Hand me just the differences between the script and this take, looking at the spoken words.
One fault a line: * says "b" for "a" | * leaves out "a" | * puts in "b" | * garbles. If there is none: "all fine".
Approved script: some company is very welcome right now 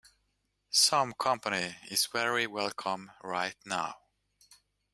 all fine